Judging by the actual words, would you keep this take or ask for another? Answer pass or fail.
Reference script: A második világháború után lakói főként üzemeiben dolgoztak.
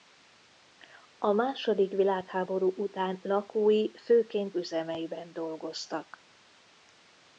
pass